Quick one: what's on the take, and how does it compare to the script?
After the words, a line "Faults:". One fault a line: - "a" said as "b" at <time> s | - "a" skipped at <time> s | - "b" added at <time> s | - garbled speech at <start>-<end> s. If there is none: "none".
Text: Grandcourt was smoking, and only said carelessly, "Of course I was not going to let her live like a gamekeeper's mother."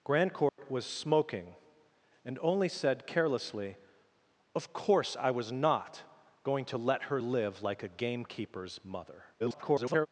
Grandcourt was smoking, and only said carelessly, "Of course I was not going to let her live like a gamekeeper's mother." [garbled]
Faults:
- garbled speech at 9.4-10.1 s